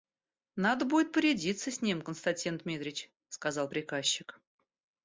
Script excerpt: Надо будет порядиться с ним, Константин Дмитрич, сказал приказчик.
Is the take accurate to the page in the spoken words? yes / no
yes